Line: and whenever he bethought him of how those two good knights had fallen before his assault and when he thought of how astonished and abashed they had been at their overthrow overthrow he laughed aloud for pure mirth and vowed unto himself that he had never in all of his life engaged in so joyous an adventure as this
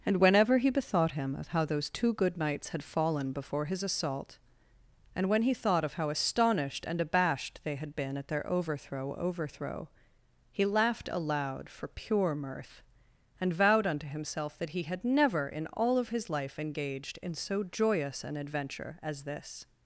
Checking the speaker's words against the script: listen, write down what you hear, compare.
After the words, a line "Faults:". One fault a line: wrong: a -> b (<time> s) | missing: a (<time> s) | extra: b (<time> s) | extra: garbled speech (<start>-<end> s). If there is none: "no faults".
and whenever he bethought him of how those two good knights had fallen before his assault and when he thought of how astonished and abashed they had been at their overthrow overthrow he laughed aloud for pure mirth and vowed unto himself that he had never in all of his life engaged in so joyous an adventure as this
Faults:
no faults